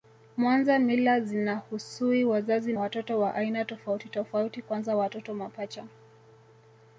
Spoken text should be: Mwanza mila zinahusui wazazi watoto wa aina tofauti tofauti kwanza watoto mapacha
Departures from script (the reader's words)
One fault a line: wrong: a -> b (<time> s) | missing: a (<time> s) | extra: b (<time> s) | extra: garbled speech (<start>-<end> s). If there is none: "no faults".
no faults